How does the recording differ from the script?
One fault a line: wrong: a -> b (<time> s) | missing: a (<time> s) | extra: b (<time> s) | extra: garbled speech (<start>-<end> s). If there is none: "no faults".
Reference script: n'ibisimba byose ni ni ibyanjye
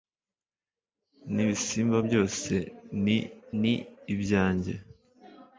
no faults